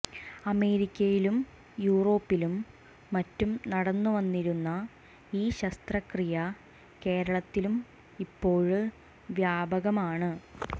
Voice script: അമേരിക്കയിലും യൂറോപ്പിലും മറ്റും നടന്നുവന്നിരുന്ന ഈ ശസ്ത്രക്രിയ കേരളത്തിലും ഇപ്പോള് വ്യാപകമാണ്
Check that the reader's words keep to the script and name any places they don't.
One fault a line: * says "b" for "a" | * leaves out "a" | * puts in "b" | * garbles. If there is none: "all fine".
all fine